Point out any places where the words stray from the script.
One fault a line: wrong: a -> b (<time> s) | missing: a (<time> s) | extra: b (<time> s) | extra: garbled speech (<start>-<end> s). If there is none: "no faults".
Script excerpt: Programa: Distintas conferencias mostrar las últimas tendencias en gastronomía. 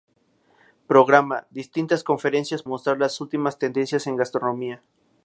no faults